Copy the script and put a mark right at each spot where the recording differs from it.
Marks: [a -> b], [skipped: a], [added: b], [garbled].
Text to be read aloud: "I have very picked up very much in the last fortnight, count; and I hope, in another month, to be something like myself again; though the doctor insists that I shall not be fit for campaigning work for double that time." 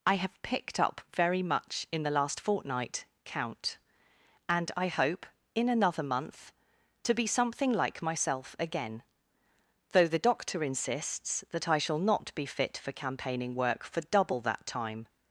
"I have [skipped: very] picked up very much in the last fortnight, count; and I hope, in another month, to be something like myself again; though the doctor insists that I shall not be fit for campaigning work for double that time."